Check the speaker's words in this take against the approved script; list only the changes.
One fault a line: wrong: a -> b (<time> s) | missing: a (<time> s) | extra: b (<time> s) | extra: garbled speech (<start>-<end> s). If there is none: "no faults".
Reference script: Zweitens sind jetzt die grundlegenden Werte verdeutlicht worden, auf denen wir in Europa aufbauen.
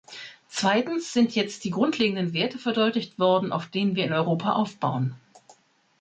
no faults